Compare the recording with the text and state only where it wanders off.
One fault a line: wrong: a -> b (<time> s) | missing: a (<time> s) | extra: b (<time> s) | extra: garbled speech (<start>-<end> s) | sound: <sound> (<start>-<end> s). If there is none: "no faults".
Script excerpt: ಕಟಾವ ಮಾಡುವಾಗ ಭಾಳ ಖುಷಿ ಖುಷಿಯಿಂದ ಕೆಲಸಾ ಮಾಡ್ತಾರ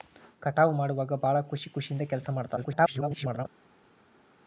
extra: garbled speech (2.6-3.5 s)